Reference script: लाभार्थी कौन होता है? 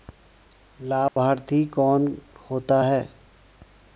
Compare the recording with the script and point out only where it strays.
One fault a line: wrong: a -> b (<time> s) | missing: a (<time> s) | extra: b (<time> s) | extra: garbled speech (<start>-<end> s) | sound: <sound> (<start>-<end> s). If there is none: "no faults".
sound: dropout (1.1-1.2 s)